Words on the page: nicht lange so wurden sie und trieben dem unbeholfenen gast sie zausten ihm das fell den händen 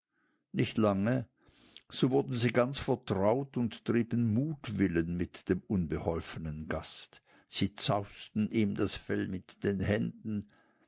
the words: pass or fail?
fail